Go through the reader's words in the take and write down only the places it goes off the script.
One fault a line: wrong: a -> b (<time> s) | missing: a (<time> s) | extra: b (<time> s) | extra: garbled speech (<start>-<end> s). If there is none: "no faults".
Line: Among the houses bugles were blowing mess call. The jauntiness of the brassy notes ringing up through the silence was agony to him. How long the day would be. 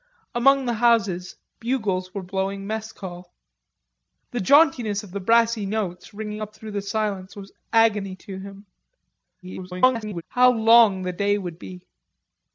extra: garbled speech (9.4-10.2 s)